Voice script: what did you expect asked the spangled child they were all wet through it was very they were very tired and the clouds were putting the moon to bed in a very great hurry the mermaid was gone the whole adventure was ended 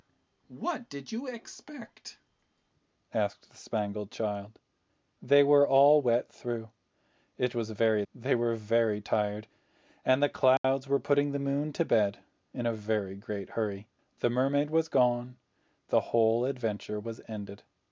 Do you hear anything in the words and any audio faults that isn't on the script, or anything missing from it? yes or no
yes